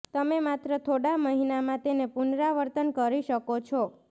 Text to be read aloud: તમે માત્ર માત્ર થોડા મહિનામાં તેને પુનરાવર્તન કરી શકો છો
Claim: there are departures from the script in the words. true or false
true